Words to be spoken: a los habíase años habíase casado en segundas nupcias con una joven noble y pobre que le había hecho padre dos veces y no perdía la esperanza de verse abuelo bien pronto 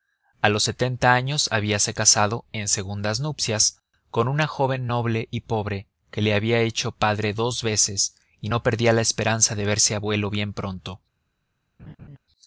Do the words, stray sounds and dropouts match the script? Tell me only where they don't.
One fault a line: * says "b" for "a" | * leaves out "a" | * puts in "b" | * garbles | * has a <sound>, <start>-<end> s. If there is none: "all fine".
* says "setenta" for "habíase"
* has a laugh, 11.8-12.2 s